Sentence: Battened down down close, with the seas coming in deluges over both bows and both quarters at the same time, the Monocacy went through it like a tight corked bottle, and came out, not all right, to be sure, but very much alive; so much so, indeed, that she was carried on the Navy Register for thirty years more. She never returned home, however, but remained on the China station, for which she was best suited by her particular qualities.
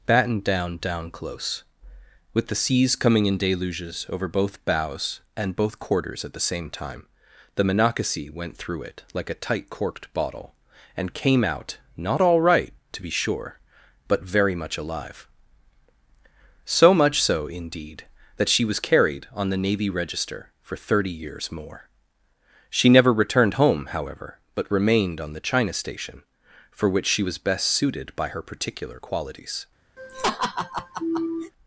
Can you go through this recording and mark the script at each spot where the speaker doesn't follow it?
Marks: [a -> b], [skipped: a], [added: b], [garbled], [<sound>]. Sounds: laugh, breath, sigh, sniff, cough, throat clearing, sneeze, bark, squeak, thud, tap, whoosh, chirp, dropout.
Battened down down close, with the seas coming in deluges over both bows and both quarters at the same time, the Monocacy went through it like a tight corked bottle, and came out, not all right, to be sure, but very much alive; so much so, indeed, that she was carried on the Navy Register for thirty years more. She never returned home, however, but remained on the China station, for which she was best suited by her particular qualities. [laugh]